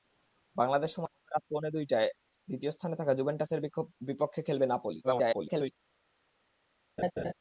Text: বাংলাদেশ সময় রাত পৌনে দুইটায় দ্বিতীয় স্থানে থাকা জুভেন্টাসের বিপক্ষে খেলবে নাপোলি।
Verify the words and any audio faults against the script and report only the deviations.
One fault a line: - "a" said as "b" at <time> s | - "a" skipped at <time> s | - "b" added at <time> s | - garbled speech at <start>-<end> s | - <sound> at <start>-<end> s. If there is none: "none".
- garbled speech at 5.0-5.7 s
- laugh at 7.0-7.3 s